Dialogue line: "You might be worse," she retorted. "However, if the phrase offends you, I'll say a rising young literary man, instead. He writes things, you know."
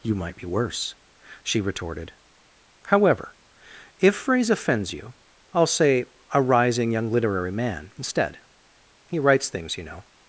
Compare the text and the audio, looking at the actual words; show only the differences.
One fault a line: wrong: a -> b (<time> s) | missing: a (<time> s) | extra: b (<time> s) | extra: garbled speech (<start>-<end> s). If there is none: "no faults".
missing: the (4.2 s)